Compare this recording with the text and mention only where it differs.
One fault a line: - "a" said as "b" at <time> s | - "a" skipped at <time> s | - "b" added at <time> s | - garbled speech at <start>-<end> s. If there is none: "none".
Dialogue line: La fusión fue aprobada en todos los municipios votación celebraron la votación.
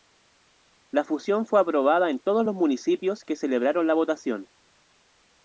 - "votación" said as "que" at 3.2 s